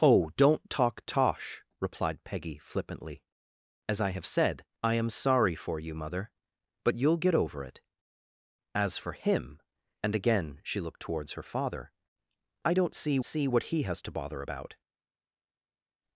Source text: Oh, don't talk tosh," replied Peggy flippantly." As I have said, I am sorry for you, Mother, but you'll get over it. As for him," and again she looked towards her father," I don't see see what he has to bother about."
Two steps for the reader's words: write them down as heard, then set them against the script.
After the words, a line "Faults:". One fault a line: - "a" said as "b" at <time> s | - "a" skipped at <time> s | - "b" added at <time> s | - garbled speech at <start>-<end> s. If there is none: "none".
Oh, don't talk tosh," replied Peggy flippantly." As I have said, I am sorry for you, Mother, but you'll get over it. As for him," and again she looked towards her father," I don't see see what he has to bother about."
Faults:
none